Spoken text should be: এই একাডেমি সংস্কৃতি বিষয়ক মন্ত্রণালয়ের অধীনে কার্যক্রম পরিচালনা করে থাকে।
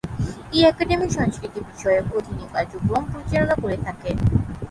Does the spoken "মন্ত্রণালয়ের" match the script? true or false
false